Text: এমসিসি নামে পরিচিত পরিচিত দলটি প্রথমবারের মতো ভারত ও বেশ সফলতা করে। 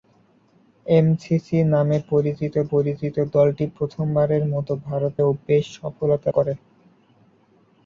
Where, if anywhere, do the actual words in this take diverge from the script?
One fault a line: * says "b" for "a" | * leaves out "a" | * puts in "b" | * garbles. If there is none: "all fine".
all fine